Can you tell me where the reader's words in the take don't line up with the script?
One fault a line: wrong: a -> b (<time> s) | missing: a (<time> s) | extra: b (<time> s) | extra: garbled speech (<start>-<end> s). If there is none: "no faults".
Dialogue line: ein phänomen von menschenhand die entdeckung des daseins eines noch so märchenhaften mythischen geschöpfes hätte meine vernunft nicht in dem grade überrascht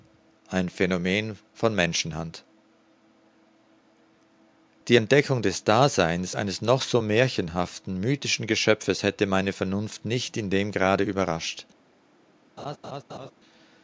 no faults